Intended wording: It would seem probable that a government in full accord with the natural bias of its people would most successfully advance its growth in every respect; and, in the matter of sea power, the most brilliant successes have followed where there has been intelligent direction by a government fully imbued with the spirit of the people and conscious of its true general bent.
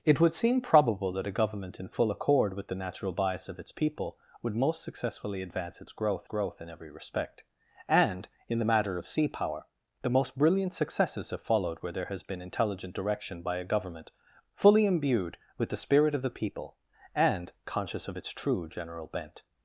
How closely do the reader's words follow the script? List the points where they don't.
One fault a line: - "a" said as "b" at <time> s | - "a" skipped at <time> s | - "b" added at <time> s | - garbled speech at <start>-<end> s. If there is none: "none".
- "growth" added at 6.2 s